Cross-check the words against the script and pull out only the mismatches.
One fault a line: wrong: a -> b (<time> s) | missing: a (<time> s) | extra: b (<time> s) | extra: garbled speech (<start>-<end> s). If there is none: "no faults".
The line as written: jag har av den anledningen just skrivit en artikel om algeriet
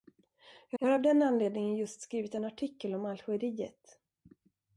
extra: jag (0.8 s)